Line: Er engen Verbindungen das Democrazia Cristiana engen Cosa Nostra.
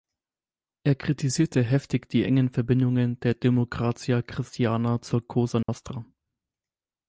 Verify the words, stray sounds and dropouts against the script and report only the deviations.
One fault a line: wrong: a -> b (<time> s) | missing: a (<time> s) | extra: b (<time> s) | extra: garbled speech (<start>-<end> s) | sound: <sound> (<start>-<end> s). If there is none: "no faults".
extra: kritisierte heftig die (0.9 s)
wrong: das -> der (3.2 s)
wrong: engen -> zur (5.0 s)
sound: dropout (5.6-5.7 s)